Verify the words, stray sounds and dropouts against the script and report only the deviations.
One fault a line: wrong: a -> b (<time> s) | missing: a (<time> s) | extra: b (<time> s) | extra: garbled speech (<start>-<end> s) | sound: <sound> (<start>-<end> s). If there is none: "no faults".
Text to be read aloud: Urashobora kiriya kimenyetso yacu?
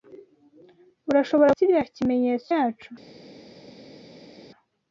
no faults